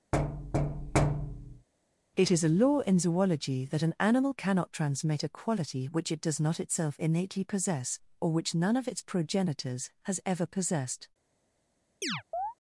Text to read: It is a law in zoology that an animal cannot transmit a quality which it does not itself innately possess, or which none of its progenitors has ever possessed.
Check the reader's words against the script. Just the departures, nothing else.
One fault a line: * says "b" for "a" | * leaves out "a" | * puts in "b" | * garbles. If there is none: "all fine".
all fine